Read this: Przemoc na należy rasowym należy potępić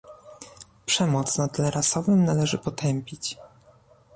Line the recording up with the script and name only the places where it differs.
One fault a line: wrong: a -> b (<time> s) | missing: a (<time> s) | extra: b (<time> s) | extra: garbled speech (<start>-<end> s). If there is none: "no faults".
wrong: należy -> tle (1.5 s)